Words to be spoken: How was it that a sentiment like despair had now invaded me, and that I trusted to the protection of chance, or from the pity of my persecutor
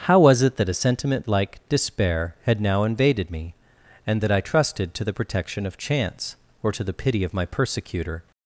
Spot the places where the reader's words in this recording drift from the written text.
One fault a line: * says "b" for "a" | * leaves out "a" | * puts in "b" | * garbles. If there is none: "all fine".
* says "to" for "from"